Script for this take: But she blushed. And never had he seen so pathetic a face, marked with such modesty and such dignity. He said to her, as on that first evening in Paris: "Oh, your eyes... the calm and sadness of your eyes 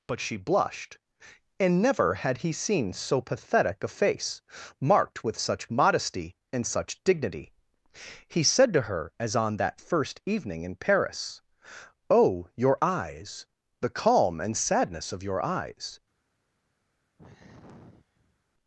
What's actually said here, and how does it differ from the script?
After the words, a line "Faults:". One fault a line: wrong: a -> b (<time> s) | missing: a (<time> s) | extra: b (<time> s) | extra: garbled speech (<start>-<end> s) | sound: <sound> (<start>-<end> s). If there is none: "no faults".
But she blushed. And never had he seen so pathetic a face, marked with such modesty and such dignity. He said to her, as on that first evening in Paris: "Oh, your eyes... the calm and sadness of your eyes
Faults:
sound: sigh (17.2-18.4 s)